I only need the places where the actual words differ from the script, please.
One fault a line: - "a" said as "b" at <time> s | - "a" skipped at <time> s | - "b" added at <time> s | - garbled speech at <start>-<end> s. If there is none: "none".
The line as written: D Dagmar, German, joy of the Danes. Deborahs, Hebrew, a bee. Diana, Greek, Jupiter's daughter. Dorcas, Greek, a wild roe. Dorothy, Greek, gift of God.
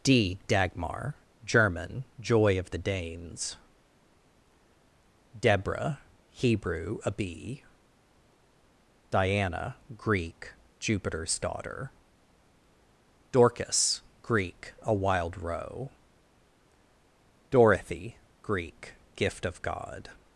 - "Deborahs" said as "Deborah" at 5.4 s